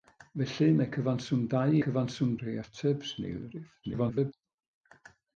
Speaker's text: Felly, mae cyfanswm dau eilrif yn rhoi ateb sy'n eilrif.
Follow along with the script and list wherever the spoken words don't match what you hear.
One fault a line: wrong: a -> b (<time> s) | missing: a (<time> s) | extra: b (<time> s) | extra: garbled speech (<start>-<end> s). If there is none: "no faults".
wrong: eilrif -> cyfanswm (1.8 s)
extra: garbled speech (3.8-4.3 s)